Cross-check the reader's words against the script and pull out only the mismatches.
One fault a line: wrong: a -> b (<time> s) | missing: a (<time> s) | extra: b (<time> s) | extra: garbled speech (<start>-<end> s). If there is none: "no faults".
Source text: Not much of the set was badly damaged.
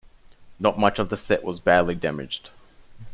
no faults